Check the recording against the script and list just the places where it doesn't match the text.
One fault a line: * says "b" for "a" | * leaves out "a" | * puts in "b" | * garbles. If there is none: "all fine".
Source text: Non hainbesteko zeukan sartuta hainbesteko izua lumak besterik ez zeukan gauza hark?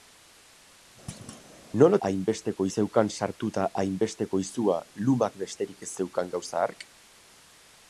all fine